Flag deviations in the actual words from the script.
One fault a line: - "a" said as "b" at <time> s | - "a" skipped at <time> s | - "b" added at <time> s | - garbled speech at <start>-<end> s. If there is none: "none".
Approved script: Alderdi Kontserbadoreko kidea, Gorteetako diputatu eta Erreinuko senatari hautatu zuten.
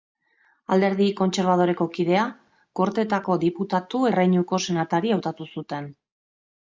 - "eta" skipped at 4.0 s